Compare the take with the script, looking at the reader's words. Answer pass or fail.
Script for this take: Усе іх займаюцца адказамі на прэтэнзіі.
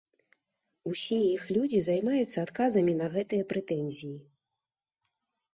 fail